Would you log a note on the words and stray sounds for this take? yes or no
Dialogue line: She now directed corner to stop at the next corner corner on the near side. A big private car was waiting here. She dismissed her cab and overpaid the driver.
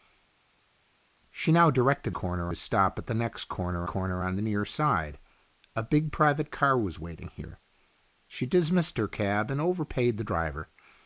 no